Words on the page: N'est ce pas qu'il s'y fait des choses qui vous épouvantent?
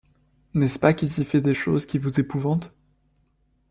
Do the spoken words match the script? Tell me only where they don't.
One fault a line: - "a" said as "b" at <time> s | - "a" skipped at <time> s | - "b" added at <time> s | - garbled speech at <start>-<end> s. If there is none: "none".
none